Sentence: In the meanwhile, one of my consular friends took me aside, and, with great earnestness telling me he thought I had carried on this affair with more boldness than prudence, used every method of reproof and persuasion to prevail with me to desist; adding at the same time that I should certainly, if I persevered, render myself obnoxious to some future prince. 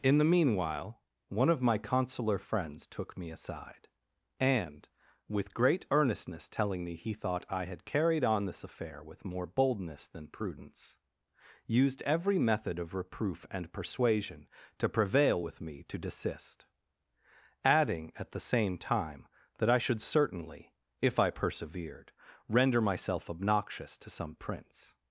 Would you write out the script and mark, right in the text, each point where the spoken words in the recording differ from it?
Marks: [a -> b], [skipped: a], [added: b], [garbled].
In the meanwhile, one of my consular friends took me aside, and, with great earnestness telling me he thought I had carried on this affair with more boldness than prudence, used every method of reproof and persuasion to prevail with me to desist; adding at the same time that I should certainly, if I persevered, render myself obnoxious to some [skipped: future] prince.